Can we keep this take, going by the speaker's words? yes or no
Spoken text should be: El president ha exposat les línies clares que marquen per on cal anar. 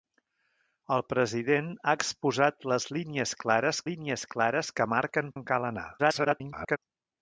no